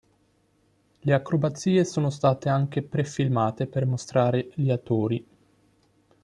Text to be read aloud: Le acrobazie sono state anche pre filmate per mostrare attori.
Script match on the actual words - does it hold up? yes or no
no